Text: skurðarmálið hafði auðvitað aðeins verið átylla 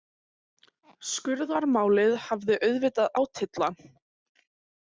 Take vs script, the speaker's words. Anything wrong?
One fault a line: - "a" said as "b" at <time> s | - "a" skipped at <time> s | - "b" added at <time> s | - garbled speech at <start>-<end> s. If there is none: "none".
- "aðeins verið" skipped at 3.1 s